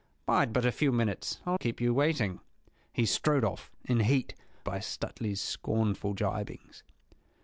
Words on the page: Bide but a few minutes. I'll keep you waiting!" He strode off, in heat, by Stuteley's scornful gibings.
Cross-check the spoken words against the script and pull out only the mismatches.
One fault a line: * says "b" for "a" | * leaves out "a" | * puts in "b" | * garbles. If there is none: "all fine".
all fine